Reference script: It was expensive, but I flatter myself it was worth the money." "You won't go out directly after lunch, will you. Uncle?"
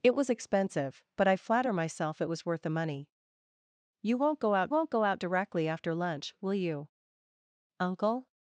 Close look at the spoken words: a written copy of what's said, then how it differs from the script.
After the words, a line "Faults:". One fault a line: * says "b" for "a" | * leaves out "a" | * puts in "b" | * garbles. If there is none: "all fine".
It was expensive, but I flatter myself it was worth the money." "You won't go out won't go out directly after lunch, will you. Uncle?"
Faults:
* puts in "won't go out"